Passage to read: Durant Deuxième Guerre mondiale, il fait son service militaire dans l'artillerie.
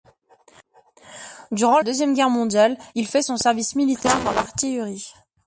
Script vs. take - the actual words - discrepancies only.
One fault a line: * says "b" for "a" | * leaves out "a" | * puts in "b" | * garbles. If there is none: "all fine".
all fine